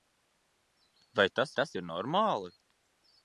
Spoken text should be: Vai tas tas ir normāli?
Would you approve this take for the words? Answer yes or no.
yes